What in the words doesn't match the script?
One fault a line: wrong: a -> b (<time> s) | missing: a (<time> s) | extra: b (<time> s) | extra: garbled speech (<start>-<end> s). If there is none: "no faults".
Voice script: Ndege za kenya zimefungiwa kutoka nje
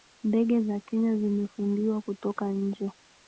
no faults